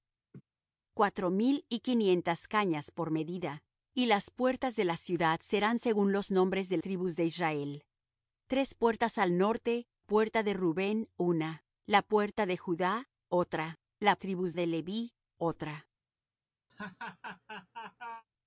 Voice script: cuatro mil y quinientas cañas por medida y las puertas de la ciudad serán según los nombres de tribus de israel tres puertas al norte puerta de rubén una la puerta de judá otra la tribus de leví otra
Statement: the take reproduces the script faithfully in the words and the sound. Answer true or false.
false